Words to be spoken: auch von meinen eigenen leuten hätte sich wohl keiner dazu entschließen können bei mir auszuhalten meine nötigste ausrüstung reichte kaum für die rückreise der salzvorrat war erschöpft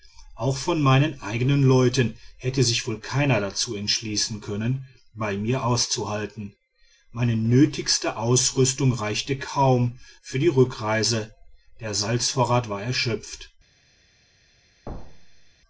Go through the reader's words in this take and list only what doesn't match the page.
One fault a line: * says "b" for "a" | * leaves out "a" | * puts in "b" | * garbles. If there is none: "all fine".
all fine